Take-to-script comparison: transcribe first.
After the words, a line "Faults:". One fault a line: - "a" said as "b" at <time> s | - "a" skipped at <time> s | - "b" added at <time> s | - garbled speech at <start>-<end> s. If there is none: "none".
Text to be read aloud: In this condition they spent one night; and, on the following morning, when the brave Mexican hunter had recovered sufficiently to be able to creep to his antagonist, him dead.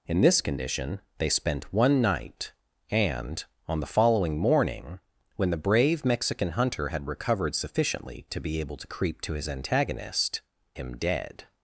In this condition they spent one night; and, on the following morning, when the brave Mexican hunter had recovered sufficiently to be able to creep to his antagonist, him dead.
Faults:
none